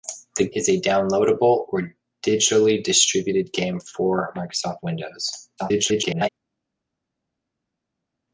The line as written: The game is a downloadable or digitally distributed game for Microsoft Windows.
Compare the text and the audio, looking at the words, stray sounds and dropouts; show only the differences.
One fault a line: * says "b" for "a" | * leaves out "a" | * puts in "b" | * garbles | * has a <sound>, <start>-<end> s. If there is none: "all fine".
* leaves out "game"
* garbles